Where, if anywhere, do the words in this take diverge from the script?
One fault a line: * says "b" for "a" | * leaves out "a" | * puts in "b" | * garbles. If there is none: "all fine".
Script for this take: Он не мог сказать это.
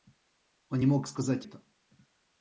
all fine